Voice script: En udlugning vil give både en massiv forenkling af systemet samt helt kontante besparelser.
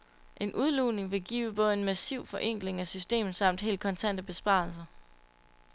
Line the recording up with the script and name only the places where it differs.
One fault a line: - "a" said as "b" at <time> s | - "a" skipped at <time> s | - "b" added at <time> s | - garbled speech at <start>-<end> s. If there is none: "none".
none